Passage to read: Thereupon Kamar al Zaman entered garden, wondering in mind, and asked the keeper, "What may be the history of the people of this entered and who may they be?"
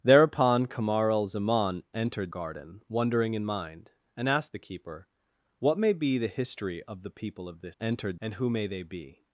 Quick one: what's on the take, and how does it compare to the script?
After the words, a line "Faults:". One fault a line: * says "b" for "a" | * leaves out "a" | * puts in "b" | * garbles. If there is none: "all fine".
Thereupon Kamar al Zaman entered garden, wondering in mind, and asked the keeper, "What may be the history of the people of this entered and who may they be?"
Faults:
all fine